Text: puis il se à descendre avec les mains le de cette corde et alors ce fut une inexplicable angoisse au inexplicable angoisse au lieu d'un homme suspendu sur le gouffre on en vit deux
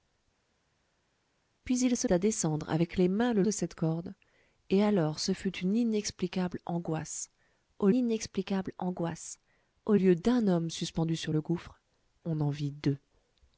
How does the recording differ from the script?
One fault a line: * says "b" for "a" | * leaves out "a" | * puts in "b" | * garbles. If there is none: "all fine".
all fine